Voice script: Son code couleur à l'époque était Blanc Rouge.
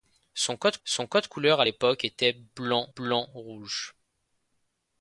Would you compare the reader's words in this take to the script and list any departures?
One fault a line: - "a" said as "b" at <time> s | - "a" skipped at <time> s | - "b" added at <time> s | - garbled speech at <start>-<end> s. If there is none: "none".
- "son code" added at 0.8 s
- "Blanc" added at 2.9 s